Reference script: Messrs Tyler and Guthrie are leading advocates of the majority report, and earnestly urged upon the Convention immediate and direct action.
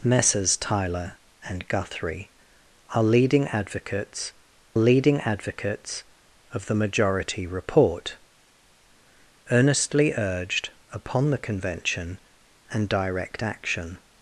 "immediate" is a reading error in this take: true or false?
true